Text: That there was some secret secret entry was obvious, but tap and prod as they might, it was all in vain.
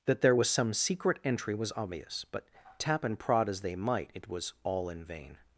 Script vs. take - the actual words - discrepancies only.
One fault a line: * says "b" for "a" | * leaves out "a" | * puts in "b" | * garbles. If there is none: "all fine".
* leaves out "secret"